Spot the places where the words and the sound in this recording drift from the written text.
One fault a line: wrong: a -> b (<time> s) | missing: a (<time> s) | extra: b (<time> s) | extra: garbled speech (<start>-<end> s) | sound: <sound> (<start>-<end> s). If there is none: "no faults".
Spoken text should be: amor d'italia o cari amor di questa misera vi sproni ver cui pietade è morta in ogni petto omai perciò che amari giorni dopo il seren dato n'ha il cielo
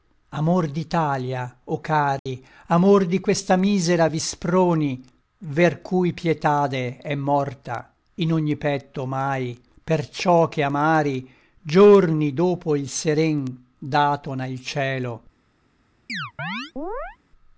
sound: dropout (2.2-2.3 s)
sound: chirp (16.1-17.2 s)